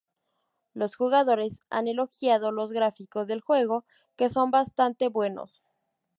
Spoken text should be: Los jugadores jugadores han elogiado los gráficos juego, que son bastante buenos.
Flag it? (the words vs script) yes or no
yes